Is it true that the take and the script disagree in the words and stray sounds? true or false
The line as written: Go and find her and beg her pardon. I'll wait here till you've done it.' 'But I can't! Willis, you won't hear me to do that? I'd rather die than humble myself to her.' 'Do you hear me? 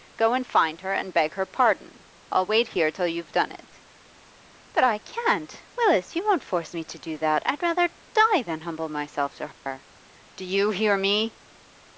true